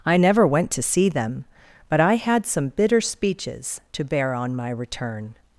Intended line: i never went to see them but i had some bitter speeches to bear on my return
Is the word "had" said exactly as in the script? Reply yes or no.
yes